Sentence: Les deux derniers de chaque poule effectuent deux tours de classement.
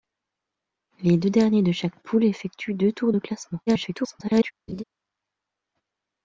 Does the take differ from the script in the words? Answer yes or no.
yes